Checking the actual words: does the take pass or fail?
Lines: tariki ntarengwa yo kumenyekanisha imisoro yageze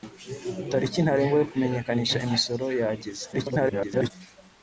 fail